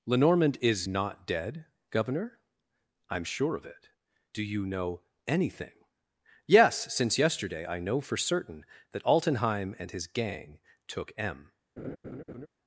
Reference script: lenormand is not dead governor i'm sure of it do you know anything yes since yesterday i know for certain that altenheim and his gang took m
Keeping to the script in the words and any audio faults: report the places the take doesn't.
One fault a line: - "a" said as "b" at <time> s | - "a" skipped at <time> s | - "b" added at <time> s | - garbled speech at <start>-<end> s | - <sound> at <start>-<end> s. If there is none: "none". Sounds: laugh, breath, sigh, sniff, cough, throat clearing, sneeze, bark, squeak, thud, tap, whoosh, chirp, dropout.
- laugh at 11.8-12.5 s